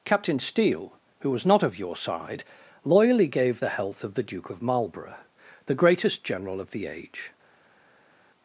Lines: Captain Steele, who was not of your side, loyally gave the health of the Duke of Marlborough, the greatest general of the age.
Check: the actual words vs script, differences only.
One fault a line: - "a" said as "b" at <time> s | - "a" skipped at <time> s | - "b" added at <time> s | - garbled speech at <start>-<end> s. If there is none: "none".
none